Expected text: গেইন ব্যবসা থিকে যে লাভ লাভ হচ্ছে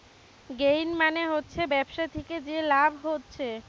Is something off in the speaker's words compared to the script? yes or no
yes